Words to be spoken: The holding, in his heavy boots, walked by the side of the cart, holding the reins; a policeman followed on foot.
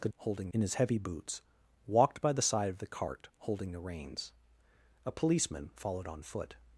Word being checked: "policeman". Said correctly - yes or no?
yes